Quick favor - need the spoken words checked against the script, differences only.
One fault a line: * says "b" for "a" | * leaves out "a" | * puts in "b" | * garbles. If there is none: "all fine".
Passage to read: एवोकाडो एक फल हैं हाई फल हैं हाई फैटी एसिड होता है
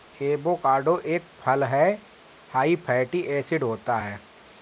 * leaves out "फल हैं हाई"